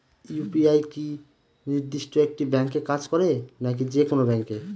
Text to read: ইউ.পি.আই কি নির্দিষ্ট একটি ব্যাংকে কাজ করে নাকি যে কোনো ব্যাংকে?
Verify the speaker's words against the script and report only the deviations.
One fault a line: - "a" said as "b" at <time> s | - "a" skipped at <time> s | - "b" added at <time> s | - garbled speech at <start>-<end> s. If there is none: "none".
none